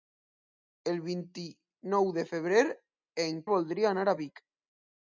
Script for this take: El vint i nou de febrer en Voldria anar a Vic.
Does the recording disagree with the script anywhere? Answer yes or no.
no